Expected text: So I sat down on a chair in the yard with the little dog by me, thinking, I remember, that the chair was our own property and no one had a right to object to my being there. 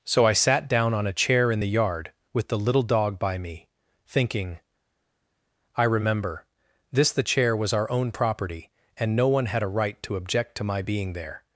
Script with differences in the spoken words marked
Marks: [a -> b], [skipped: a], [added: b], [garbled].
So I sat down on a chair in the yard with the little dog by me, thinking, I remember, [that -> this] the chair was our own property and no one had a right to object to my being there.